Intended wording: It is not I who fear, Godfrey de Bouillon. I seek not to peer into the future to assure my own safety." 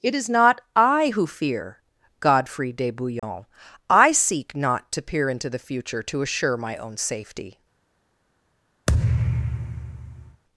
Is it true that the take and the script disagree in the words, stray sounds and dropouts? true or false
true